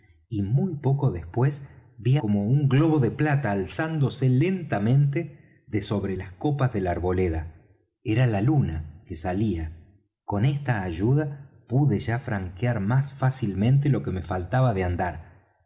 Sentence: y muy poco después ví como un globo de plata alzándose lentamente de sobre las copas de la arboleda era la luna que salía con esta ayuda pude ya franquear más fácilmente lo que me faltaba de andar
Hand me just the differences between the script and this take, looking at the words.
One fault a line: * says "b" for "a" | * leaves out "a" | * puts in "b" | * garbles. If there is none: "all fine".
all fine